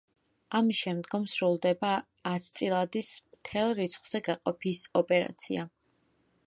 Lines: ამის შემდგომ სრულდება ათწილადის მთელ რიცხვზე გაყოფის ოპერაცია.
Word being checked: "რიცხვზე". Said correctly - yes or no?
yes